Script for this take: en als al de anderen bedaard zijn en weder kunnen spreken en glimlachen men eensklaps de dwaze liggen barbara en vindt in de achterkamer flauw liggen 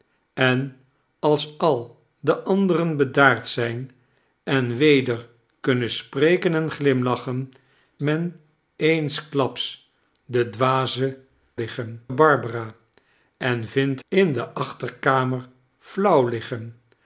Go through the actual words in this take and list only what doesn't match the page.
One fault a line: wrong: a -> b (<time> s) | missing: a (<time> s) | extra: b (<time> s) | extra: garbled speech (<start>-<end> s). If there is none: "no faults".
no faults